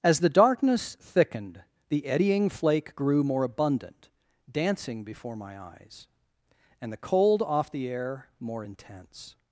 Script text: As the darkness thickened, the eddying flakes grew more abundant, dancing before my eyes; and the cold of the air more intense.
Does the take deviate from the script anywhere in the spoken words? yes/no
yes